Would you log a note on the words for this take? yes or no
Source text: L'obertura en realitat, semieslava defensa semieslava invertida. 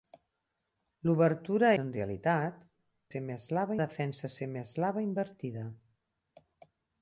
no